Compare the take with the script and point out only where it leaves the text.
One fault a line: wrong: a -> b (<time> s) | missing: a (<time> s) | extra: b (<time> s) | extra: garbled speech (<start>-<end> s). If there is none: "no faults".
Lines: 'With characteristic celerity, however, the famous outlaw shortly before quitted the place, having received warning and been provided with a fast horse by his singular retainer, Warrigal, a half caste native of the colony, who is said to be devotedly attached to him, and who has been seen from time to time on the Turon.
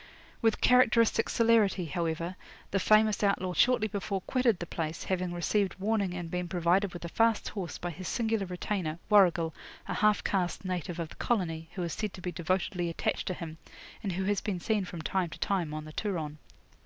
no faults